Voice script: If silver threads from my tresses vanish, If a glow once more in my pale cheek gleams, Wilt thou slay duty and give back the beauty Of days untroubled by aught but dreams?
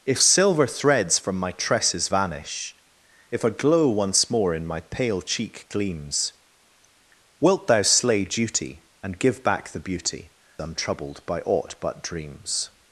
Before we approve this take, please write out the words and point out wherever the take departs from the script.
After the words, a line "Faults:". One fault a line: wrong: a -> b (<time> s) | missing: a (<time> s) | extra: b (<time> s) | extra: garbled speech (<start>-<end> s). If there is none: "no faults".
If silver threads from my tresses vanish, If a glow once more in my pale cheek gleams, Wilt thou slay duty and give back the beauty Untroubled by aught but dreams?
Faults:
missing: Of days (10.3 s)